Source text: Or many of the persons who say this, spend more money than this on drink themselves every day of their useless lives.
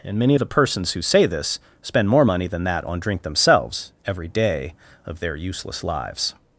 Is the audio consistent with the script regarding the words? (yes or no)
no